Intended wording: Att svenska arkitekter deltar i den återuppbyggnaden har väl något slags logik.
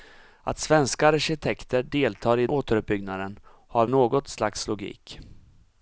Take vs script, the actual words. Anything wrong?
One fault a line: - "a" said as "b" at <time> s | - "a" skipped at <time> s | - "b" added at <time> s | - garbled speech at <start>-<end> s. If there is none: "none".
- "den" skipped at 2.5 s
- "väl" skipped at 3.9 s